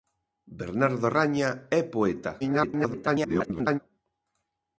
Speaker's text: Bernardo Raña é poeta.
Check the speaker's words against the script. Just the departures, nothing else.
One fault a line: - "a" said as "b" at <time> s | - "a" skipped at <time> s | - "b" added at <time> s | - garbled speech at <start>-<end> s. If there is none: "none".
- garbled speech at 2.4-3.8 s